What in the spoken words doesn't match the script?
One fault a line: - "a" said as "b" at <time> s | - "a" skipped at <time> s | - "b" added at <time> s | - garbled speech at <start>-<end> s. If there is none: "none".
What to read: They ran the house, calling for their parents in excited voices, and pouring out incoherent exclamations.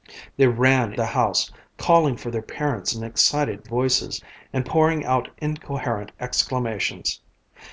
none